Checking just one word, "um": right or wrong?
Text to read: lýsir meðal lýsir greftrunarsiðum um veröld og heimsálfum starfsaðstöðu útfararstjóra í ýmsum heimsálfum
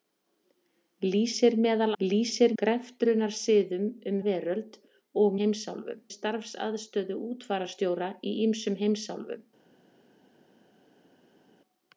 right